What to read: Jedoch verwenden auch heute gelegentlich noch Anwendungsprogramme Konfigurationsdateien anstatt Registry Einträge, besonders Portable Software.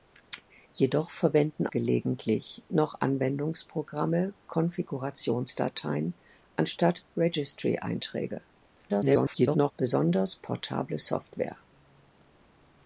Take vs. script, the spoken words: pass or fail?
fail